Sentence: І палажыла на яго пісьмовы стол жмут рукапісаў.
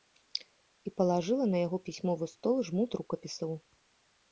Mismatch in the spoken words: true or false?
false